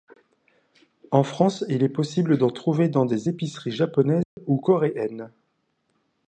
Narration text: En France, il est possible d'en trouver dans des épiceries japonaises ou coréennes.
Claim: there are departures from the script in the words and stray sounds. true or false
true